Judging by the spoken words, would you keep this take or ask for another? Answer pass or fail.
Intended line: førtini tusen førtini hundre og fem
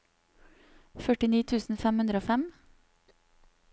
fail